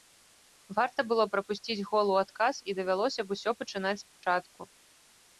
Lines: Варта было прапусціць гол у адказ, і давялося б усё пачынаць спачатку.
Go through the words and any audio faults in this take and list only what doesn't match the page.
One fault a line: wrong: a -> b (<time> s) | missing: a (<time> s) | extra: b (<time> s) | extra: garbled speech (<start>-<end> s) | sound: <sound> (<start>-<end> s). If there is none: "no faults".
sound: dropout (4.1-4.2 s)